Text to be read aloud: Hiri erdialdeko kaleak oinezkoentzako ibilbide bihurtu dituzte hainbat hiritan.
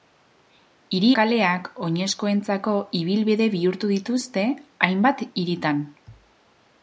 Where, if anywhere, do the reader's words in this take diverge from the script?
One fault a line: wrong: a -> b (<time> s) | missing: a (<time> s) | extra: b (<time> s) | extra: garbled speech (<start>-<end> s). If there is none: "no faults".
missing: erdialdeko (1.1 s)